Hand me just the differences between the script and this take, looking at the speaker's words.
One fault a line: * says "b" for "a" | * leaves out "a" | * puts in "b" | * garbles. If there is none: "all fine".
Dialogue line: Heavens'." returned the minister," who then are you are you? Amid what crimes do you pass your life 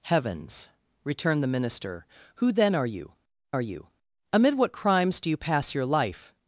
all fine